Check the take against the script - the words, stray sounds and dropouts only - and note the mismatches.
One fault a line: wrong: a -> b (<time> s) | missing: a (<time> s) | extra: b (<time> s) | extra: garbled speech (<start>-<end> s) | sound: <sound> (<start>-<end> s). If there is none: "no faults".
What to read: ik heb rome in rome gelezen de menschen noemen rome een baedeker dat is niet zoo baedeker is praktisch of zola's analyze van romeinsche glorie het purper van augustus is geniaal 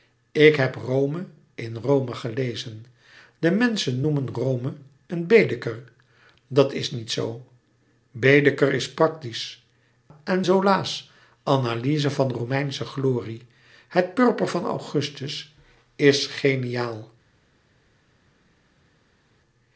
wrong: of -> en (10.2 s)